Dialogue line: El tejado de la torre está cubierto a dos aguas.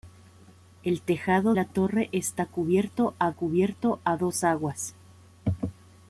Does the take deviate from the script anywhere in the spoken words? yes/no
yes